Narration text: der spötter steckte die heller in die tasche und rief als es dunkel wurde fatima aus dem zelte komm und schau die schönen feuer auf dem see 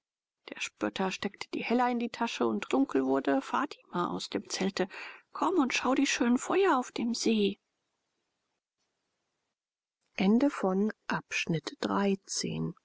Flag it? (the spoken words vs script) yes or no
yes